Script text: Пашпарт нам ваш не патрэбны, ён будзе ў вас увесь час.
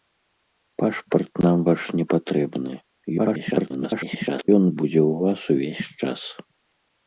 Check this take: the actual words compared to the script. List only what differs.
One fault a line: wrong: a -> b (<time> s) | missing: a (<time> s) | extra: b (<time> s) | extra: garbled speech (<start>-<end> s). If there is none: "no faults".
extra: garbled speech (3.2-4.5 s)